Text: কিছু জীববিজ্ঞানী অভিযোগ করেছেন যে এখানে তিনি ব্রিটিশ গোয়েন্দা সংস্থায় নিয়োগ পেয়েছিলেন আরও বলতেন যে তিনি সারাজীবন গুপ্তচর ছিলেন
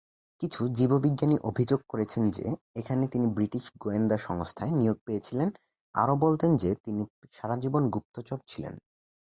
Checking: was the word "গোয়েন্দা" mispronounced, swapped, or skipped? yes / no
no